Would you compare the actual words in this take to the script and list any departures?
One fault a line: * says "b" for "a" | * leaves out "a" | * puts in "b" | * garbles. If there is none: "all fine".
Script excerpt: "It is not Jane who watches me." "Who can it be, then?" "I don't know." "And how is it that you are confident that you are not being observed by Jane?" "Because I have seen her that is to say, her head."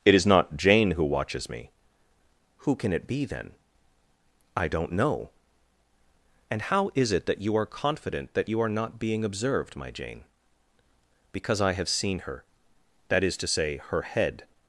* says "my" for "by"